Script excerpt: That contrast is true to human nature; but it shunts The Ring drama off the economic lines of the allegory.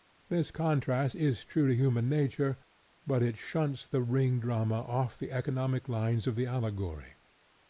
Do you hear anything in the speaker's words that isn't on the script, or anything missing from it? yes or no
yes